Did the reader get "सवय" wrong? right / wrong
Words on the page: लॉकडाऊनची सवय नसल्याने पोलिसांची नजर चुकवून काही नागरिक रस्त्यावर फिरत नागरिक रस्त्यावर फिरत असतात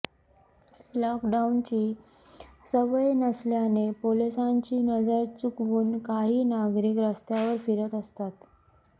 right